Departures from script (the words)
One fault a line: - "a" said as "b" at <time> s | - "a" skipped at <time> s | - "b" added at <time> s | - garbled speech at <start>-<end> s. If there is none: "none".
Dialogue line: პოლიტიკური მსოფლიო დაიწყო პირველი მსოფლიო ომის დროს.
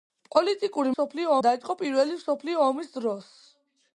none